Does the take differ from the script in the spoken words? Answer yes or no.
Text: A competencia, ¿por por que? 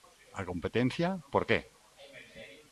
yes